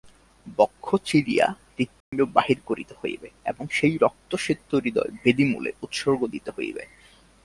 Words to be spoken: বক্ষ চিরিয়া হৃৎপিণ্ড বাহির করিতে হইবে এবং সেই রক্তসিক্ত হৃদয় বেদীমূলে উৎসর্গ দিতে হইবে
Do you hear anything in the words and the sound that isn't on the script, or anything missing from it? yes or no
yes